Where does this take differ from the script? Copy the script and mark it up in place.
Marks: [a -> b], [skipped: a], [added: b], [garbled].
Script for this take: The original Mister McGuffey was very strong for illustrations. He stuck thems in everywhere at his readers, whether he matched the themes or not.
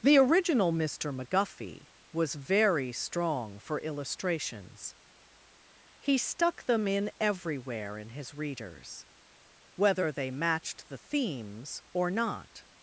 The original Mister McGuffey was very strong for illustrations. He stuck [thems -> them] in everywhere [at -> in] his readers, whether [he -> they] matched the themes or not.